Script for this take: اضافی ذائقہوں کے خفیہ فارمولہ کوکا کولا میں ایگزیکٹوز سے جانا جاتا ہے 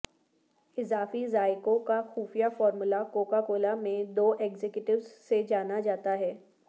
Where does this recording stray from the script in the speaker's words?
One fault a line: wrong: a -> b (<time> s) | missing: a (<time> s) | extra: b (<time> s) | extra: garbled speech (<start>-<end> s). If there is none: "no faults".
wrong: کے -> کا (1.9 s)
extra: دو (4.1 s)